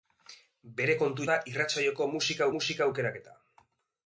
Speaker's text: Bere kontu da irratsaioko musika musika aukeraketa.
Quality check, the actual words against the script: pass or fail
pass